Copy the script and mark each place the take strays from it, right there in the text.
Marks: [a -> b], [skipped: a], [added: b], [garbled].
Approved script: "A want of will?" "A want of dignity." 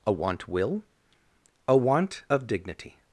"A want [skipped: of] will?" "A want of dignity."